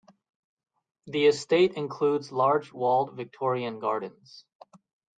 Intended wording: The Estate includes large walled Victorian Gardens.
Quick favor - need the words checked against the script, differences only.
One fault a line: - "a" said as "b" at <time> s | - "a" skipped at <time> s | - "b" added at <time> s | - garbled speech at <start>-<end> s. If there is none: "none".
none